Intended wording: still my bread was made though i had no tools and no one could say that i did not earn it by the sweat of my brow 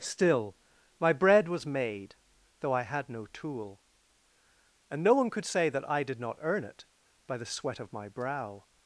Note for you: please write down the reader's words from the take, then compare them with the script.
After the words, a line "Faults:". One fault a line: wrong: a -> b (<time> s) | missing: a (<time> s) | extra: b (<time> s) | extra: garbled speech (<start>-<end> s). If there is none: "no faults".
still my bread was made though i had no tool and no one could say that i did not earn it by the sweat of my brow
Faults:
wrong: tools -> tool (3.3 s)